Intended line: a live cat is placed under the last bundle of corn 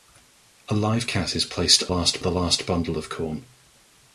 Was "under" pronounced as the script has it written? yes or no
no